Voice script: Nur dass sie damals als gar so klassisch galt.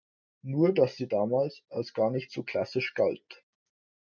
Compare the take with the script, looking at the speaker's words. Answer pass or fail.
fail